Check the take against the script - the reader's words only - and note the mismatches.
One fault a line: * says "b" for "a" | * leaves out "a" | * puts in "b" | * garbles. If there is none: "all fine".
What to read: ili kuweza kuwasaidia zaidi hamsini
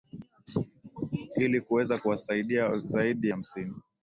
all fine